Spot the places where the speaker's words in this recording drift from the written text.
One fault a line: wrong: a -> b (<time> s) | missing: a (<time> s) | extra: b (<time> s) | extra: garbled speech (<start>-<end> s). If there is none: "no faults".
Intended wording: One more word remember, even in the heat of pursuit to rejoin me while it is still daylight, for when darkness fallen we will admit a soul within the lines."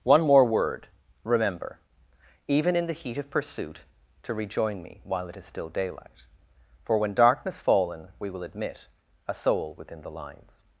no faults